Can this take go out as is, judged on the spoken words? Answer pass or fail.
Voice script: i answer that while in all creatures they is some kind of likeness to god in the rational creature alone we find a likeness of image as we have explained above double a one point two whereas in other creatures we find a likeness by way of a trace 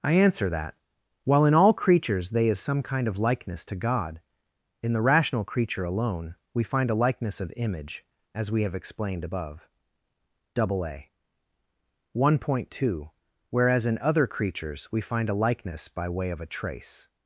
pass